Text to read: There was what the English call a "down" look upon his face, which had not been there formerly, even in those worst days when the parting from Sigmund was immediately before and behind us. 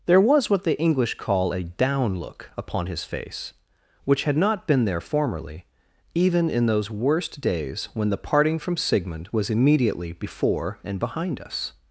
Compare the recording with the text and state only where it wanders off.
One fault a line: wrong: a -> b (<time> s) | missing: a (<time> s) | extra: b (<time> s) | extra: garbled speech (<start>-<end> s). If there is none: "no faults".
no faults